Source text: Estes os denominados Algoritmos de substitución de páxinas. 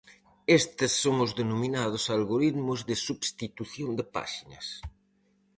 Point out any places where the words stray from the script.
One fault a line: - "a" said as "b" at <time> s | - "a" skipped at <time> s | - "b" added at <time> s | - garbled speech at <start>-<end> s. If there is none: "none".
- "son" added at 1.0 s